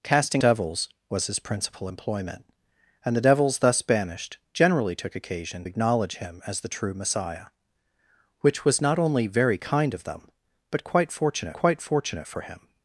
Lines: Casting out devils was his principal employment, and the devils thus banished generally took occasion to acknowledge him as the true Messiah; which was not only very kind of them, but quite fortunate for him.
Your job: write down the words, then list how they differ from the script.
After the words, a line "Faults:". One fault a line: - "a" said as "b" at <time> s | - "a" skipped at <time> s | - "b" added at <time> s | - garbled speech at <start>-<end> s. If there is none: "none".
Casting devils was his principal employment, and the devils thus banished generally took occasion acknowledge him as the true Messiah; which was not only very kind of them, but quite fortunate quite fortunate for him.
Faults:
- "out" skipped at 0.4 s
- "to" skipped at 5.6 s
- "quite fortunate" added at 11.5 s